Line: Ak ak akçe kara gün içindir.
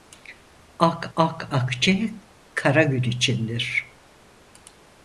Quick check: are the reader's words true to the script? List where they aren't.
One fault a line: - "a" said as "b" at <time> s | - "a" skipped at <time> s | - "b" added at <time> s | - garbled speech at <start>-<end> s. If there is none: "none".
none